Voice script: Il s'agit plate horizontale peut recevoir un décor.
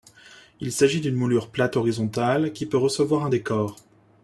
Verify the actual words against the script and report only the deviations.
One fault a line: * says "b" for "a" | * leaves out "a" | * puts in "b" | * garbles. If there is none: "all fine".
* puts in "d'une moulure"
* puts in "qui"